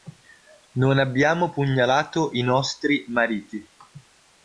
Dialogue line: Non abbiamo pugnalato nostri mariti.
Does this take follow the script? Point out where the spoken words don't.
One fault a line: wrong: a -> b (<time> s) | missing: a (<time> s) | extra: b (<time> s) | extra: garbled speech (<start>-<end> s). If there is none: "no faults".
extra: i (2.3 s)